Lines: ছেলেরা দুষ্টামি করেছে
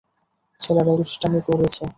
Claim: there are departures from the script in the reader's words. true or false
false